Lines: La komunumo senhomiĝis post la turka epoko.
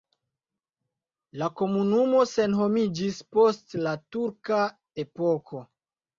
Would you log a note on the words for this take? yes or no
no